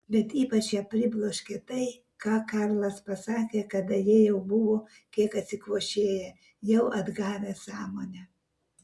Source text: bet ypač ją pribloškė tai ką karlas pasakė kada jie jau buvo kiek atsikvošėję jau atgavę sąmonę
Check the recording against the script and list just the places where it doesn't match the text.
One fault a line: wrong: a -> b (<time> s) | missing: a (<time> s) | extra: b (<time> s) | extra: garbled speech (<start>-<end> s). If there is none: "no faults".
no faults